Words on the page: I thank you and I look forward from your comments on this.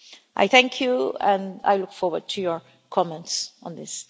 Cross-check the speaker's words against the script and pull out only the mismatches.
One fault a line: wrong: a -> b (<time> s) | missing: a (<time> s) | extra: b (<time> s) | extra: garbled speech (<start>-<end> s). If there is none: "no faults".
wrong: from -> to (2.3 s)